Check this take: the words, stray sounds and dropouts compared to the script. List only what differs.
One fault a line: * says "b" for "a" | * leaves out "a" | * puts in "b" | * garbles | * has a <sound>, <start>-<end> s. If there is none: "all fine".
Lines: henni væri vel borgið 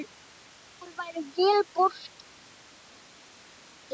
all fine